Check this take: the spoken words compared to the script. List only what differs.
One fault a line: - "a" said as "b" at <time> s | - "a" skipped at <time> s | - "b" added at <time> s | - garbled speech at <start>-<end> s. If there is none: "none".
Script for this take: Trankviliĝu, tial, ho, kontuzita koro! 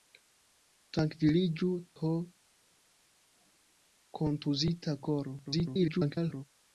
- "tial" skipped at 1.7 s
- garbled speech at 5.4-6.4 s